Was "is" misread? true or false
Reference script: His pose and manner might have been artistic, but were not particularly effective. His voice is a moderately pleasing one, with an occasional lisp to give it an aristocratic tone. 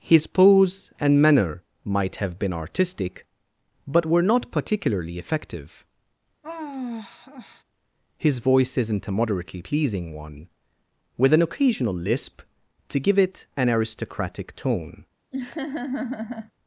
true